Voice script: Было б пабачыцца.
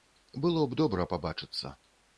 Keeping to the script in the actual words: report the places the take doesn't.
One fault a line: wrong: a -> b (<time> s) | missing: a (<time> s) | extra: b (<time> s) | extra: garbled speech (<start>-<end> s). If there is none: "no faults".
extra: добра (0.8 s)